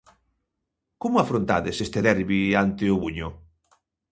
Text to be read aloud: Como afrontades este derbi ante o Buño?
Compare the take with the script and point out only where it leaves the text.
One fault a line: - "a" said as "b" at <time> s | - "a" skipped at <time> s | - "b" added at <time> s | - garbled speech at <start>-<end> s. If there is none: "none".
none